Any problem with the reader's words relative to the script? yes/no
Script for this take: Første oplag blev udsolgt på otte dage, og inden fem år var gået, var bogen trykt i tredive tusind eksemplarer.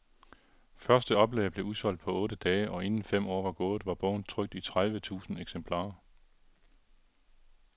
no